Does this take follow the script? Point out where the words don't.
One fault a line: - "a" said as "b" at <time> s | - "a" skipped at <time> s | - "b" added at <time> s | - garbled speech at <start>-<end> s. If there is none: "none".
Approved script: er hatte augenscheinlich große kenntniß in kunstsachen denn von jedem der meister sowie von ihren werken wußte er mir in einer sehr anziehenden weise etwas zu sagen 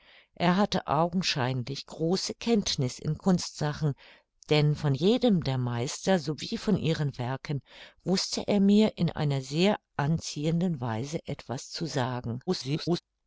- garbled speech at 12.5-13.0 s